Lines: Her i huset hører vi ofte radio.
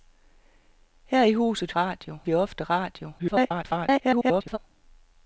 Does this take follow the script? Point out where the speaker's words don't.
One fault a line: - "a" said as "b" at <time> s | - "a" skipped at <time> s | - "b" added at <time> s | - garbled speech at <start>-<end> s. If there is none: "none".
- "hører" said as "radio" at 1.7 s
- garbled speech at 3.2-4.6 s